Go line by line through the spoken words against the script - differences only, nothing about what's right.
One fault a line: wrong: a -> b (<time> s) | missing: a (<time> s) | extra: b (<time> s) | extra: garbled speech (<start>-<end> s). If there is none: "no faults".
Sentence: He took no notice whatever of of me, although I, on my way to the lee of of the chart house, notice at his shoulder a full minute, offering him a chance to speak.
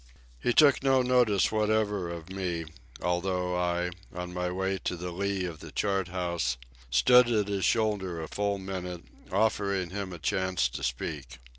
missing: of (2.3 s)
missing: of (5.6 s)
wrong: notice -> stood (6.9 s)